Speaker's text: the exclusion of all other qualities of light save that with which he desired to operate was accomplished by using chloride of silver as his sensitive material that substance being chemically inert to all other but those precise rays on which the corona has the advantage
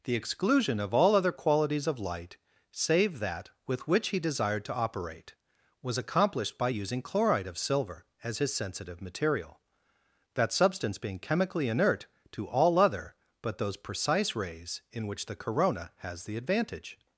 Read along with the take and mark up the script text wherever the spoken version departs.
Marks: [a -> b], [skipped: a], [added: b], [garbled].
the exclusion of all other qualities of light save that with which he desired to operate was accomplished by using chloride of silver as his sensitive material that substance being chemically inert to all other but those precise rays [on -> in] which the corona has the advantage